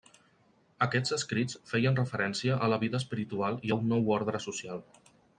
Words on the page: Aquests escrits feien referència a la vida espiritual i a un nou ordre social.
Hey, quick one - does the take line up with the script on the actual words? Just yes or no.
yes